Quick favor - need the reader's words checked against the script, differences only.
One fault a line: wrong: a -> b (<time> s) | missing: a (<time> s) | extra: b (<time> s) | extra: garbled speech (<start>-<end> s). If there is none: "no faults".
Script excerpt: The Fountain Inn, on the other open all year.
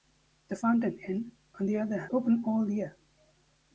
no faults